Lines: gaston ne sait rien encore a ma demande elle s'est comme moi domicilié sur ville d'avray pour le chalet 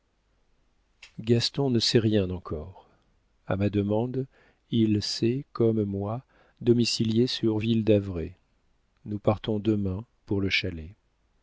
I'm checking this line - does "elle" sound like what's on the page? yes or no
no